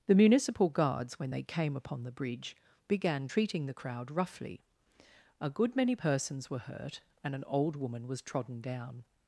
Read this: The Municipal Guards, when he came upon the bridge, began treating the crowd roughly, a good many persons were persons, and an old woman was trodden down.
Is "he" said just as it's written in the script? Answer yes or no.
no